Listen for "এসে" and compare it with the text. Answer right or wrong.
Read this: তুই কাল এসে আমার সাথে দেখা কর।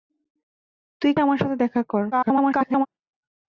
wrong